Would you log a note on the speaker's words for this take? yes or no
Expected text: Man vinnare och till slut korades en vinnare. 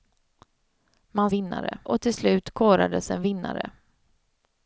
no